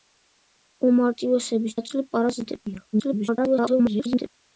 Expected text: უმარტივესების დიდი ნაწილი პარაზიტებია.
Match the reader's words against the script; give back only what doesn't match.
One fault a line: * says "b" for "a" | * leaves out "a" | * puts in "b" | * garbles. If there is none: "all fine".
* leaves out "დიდი"
* garbles